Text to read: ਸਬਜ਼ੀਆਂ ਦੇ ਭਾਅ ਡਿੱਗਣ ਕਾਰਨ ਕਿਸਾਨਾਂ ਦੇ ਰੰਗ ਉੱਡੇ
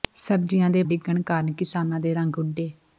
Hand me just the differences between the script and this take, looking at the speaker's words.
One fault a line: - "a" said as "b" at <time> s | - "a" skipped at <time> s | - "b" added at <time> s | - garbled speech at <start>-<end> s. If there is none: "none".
- "ਭਾਅ" skipped at 0.8 s